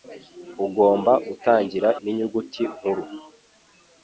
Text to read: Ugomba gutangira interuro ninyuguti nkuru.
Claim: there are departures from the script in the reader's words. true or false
true